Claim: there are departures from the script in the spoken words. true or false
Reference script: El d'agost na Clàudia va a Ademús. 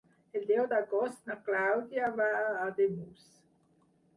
true